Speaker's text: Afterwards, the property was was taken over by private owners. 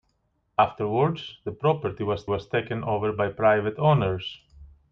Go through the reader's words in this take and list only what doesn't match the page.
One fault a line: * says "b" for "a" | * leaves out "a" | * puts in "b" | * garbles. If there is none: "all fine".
all fine